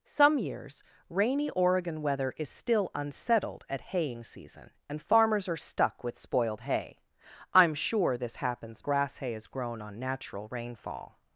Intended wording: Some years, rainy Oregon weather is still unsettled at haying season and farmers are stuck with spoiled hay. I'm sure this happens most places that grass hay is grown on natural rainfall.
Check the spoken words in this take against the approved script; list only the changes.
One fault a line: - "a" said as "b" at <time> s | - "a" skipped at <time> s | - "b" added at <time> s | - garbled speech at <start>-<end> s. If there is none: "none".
- "most places that" skipped at 8.8 s